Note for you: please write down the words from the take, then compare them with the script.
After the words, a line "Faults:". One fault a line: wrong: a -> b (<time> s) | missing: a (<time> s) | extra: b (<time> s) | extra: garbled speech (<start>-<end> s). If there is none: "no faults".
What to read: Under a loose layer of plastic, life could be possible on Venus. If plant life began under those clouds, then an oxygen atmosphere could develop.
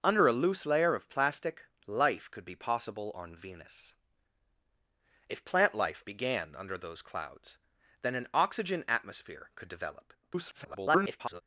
Under a loose layer of plastic, life could be possible on Venus. If plant life began under those clouds, then an oxygen atmosphere could develop. [garbled]
Faults:
extra: garbled speech (10.2-11.4 s)